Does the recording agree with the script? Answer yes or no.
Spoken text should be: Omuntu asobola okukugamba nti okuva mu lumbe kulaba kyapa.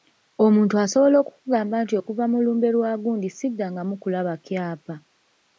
no